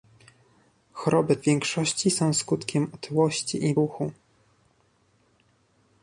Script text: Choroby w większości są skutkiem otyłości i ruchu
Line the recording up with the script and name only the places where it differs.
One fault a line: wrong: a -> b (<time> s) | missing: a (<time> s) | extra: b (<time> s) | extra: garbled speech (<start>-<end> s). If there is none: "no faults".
no faults